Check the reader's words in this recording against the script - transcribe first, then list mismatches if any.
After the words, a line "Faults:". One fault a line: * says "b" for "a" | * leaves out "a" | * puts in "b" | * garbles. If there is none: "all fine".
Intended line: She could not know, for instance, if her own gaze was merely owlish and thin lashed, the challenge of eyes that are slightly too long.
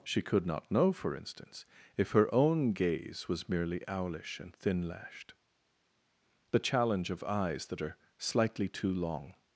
She could not know, for instance, if her own gaze was merely owlish and thin lashed, the challenge of eyes that are slightly too long.
Faults:
all fine